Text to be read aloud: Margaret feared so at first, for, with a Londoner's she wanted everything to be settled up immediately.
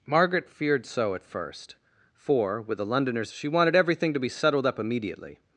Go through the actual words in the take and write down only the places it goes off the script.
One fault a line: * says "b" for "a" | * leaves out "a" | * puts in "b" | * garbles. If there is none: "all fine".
all fine